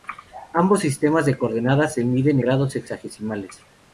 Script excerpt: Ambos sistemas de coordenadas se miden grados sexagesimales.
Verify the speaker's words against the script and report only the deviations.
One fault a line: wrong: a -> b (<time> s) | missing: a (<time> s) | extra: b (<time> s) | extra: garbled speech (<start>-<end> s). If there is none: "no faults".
no faults